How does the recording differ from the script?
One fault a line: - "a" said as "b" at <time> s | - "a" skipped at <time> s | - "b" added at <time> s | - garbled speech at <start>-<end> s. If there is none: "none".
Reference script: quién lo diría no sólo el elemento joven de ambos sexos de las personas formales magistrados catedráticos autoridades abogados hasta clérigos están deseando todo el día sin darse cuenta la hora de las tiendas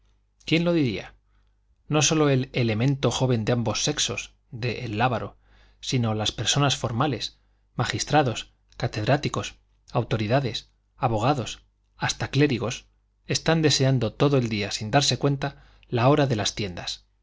- "el lábaro sino" added at 4.8 s